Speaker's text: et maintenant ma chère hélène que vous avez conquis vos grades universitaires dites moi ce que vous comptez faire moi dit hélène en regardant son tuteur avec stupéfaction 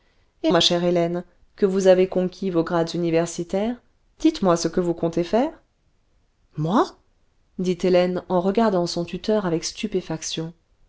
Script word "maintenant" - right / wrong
wrong